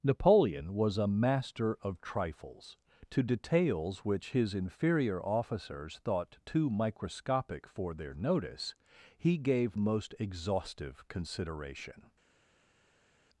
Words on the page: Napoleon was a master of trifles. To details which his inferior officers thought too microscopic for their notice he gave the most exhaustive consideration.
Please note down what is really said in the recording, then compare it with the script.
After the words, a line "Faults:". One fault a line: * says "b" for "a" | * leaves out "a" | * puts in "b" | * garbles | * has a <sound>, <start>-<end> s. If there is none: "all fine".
Napoleon was a master of trifles. To details which his inferior officers thought too microscopic for their notice he gave most exhaustive consideration.
Faults:
* leaves out "the"